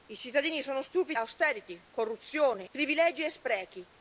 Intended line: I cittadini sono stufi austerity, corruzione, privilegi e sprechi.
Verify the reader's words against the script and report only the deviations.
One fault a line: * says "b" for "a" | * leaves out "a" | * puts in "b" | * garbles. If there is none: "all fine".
all fine